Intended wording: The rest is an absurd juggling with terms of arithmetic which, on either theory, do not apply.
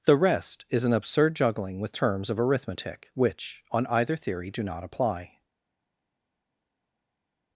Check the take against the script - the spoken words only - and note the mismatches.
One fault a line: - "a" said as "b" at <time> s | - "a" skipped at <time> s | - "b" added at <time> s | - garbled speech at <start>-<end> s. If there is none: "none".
none